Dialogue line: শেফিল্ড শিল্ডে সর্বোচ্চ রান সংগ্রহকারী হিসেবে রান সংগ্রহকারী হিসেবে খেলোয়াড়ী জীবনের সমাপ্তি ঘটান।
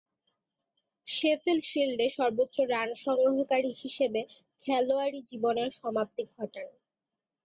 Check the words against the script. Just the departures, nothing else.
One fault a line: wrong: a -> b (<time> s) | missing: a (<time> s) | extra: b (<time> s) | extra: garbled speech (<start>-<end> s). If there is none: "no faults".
missing: রান সংগ্রহকারী হিসেবে (4.2 s)